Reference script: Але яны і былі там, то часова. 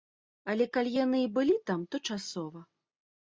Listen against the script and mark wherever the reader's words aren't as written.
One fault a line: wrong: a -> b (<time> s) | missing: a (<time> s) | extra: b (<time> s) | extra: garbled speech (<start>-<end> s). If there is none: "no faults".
extra: калі (0.8 s)